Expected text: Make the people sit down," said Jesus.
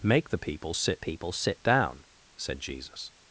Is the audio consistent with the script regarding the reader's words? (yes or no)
no